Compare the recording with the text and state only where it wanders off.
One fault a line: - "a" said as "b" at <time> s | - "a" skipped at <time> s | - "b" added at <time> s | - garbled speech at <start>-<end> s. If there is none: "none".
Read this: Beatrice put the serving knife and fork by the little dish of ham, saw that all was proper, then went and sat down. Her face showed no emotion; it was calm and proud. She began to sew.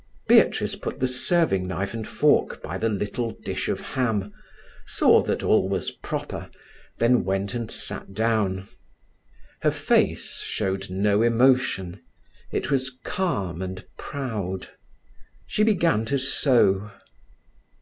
none